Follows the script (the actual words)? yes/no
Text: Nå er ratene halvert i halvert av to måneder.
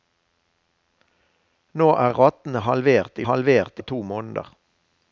yes